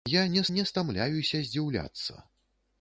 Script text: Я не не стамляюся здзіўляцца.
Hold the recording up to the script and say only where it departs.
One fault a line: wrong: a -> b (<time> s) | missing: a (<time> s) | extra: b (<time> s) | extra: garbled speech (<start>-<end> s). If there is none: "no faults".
no faults